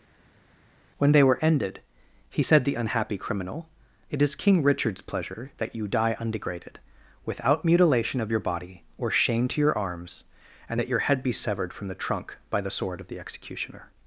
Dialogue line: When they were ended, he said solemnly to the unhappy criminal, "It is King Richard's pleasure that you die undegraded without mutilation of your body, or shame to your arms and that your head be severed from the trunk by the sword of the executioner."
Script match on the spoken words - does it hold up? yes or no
no